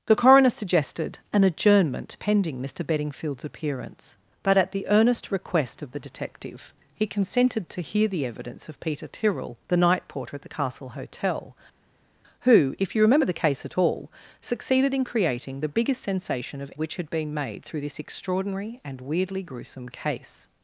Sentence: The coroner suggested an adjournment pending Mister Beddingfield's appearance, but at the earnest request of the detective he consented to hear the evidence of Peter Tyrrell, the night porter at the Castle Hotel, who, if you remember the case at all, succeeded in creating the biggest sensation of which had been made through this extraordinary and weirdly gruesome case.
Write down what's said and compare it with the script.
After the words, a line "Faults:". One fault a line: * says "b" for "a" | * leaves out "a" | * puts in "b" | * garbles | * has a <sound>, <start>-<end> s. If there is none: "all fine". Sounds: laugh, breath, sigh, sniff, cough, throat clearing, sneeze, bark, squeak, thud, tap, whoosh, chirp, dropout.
The coroner suggested an adjournment pending Mister Beddingfield's appearance, but at the earnest request of the detective he consented to hear the evidence of Peter Tyrrell, the night porter at the Castle Hotel, who, if you remember the case at all, succeeded in creating the biggest sensation of which had been made through this extraordinary and weirdly gruesome case.
Faults:
all fine